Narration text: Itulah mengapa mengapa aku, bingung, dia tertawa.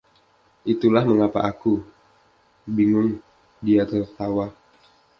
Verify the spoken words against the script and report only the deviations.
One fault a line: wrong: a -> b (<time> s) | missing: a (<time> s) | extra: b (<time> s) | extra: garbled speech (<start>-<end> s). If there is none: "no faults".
missing: mengapa (1.4 s)